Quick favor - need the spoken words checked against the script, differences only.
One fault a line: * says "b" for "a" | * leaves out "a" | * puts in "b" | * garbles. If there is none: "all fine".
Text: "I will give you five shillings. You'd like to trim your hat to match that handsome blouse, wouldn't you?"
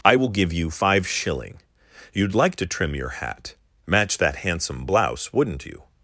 * says "shilling" for "shillings"
* leaves out "to"